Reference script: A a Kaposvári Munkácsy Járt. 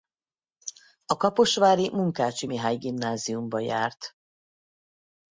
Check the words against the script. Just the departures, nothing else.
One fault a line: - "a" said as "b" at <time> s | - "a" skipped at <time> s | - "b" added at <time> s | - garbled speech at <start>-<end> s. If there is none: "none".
- "a" skipped at 1.2 s
- "Mihály Gimnáziumba" added at 2.5 s